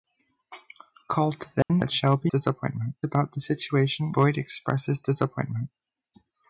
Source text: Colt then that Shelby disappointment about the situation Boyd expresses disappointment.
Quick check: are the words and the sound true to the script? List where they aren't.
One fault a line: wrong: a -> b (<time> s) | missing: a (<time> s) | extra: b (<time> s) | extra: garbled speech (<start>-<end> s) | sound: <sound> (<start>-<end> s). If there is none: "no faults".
sound: dropout (1.6-1.7 s)